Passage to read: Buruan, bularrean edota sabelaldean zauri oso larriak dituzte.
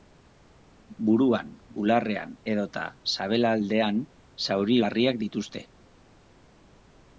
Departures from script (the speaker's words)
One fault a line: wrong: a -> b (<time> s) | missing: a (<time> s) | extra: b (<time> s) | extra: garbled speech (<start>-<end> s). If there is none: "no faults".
missing: oso (4.8 s)